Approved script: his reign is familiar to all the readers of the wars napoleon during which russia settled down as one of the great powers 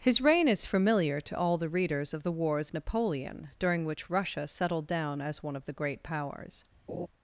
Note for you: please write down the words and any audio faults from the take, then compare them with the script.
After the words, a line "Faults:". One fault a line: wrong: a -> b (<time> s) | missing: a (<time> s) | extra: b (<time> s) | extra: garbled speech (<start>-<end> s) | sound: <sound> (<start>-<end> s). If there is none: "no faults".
his reign is familiar to all the readers of the wars napoleon during which russia settled down as one of the great powers
Faults:
sound: laugh (6.9-7.1 s)